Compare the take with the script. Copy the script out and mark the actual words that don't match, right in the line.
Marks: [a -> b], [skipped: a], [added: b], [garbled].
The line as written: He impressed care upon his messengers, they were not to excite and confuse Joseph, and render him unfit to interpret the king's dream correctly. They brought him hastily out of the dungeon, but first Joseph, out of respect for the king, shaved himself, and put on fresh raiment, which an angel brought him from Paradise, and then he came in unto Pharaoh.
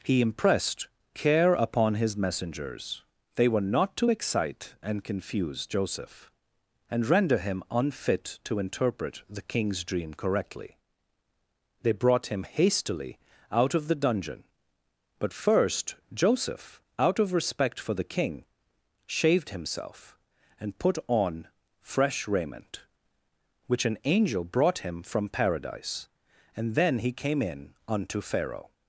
He impressed care upon his messengers, they were not to excite and confuse Joseph, and render him unfit to interpret the king's dream correctly. They brought him hastily out of the dungeon, but first Joseph, out of respect for the king, shaved himself, and put on fresh raiment, which an angel brought him from Paradise, and then he came in unto Pharaoh.